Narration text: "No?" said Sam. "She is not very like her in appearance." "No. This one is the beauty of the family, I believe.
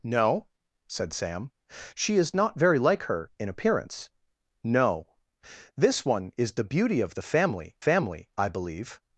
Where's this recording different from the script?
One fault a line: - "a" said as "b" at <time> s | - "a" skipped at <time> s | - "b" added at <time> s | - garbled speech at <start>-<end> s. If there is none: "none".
- "family" added at 7.8 s